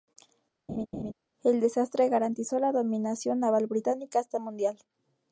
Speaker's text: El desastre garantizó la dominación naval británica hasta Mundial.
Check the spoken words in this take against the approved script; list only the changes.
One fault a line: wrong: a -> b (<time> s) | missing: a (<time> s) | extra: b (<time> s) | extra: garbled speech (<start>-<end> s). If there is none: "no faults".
no faults